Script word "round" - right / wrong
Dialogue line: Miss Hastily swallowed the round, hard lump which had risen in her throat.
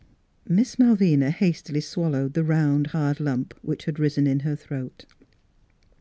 right